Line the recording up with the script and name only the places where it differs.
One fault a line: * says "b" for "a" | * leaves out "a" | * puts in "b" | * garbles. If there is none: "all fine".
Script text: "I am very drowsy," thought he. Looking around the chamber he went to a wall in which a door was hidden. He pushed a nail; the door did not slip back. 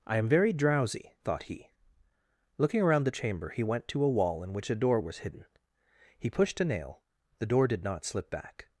all fine